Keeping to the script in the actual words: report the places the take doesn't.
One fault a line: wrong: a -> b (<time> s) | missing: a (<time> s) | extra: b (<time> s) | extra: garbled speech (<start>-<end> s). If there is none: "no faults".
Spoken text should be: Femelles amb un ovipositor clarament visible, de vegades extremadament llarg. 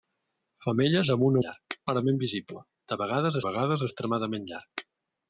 wrong: ovipositor -> llarg (1.5 s)
extra: vegades (3.5 s)